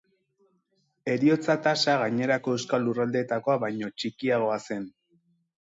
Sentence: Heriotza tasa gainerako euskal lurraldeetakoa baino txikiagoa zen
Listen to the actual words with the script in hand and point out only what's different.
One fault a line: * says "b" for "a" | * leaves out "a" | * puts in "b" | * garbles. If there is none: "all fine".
all fine